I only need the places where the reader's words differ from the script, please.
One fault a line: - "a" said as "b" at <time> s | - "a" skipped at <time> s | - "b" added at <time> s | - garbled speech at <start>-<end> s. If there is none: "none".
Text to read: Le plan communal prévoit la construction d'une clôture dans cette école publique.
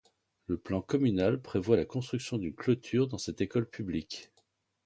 none